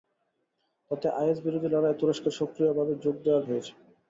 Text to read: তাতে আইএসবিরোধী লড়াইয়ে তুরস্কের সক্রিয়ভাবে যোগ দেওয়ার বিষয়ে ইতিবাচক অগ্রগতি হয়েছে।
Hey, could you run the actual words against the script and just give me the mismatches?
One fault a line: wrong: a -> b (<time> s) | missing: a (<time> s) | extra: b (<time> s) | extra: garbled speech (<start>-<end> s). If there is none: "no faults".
missing: বিষয়ে ইতিবাচক অগ্রগতি (3.5 s)